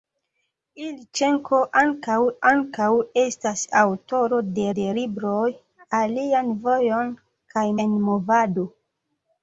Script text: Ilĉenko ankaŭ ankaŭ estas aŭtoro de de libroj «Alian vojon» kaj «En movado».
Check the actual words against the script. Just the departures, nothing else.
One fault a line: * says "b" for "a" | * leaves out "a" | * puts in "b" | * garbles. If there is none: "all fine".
all fine